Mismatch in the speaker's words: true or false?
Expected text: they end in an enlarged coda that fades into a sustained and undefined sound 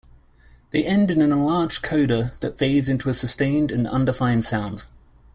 false